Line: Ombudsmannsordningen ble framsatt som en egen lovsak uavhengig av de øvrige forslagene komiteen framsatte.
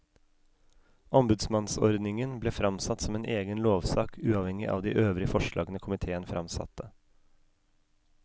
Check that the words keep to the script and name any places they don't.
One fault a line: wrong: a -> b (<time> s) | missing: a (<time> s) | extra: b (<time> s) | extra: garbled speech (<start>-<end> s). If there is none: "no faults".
no faults